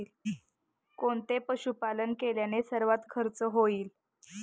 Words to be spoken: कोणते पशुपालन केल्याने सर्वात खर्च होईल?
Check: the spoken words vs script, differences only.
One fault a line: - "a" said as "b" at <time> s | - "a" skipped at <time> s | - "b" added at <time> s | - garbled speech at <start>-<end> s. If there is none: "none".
none